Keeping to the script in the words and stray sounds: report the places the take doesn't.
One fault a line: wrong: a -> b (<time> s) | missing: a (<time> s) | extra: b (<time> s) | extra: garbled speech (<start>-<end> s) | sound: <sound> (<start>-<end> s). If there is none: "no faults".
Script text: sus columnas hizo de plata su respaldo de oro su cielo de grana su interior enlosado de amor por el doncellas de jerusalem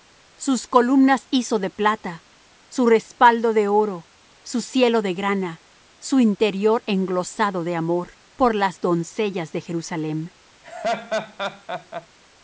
wrong: el -> las (8.5 s)
sound: laugh (10.6-12.1 s)